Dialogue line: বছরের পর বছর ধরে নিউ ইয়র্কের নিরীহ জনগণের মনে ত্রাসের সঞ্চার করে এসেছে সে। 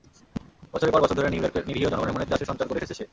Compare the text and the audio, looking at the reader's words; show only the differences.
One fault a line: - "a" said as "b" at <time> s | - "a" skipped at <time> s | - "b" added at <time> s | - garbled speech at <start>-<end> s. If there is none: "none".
none